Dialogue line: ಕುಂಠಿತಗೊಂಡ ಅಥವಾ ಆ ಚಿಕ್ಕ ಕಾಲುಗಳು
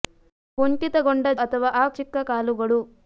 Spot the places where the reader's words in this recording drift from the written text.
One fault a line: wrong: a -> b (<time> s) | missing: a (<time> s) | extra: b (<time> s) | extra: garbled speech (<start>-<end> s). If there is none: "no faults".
no faults